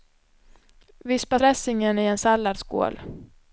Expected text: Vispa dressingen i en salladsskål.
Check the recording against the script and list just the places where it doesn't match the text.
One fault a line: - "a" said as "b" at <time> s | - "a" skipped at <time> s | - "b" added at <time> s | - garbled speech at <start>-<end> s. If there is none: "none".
none